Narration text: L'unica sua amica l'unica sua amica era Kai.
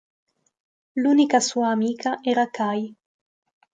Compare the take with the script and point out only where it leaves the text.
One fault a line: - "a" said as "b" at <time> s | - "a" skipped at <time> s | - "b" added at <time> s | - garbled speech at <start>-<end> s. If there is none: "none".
- "l'unica sua amica" skipped at 2.2 s